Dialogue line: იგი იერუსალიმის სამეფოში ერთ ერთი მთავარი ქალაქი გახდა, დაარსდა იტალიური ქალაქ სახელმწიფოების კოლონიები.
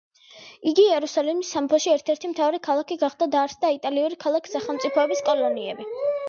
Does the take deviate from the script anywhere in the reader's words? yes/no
no